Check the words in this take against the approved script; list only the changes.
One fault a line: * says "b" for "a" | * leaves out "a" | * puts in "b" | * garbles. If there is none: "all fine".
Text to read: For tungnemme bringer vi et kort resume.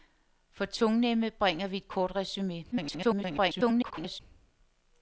* garbles